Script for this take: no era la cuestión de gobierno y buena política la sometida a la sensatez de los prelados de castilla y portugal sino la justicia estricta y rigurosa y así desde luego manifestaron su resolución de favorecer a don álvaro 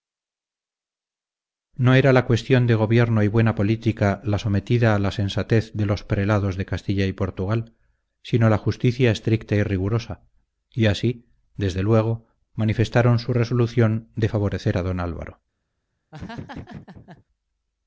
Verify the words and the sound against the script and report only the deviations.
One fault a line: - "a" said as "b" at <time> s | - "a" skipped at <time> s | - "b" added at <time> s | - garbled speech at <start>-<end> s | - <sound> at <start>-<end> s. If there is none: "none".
- laugh at 16.1-17.2 s